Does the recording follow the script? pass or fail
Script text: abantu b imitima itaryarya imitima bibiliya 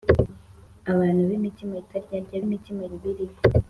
pass